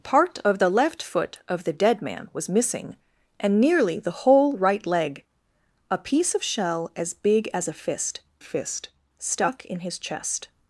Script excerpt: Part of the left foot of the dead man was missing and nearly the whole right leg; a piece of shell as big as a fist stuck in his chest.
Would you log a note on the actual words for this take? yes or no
yes